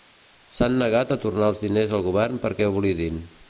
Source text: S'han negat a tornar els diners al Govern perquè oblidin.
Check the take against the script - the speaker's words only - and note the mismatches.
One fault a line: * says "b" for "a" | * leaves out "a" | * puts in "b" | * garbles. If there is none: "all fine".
all fine